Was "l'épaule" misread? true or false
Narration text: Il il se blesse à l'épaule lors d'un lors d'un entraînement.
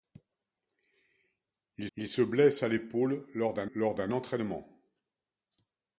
false